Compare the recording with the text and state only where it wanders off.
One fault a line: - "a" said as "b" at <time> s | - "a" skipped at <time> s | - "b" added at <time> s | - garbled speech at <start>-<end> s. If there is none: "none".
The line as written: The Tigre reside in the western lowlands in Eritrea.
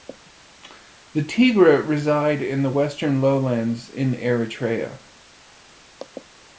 none